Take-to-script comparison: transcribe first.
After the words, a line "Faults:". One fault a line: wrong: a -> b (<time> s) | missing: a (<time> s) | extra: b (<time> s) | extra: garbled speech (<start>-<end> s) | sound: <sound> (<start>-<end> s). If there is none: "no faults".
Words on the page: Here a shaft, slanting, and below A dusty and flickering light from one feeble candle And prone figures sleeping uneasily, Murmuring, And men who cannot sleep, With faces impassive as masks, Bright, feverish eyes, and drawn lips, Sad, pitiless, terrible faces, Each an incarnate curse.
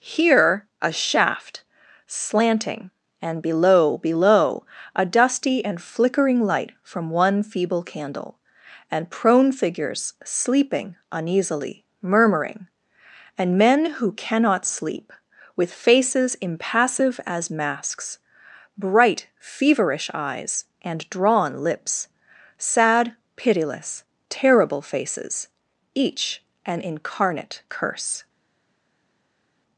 Here a shaft, slanting, and below below A dusty and flickering light from one feeble candle And prone figures sleeping uneasily, Murmuring, And men who cannot sleep, With faces impassive as masks, Bright, feverish eyes, and drawn lips, Sad, pitiless, terrible faces, Each an incarnate curse.
Faults:
extra: below (4.0 s)